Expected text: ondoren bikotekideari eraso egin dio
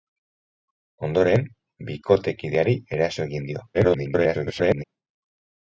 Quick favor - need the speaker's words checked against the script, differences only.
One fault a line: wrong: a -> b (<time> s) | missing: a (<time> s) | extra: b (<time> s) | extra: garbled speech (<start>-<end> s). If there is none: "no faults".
extra: garbled speech (3.7-4.8 s)